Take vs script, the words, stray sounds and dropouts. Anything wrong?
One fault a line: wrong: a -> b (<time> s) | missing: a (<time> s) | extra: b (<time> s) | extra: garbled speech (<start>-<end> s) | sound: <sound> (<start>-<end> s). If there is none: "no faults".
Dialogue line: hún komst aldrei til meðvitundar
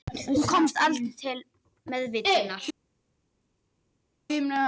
no faults